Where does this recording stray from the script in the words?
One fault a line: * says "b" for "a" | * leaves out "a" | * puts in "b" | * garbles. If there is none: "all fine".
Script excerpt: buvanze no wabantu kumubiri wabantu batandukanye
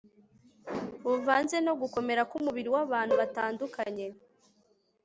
* says "gukomera" for "wabantu"